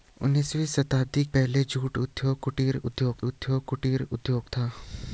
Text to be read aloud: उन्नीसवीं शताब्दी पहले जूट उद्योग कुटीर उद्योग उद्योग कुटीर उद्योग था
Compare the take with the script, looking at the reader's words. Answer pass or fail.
pass